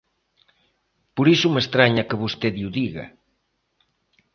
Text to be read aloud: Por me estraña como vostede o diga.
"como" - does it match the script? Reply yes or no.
no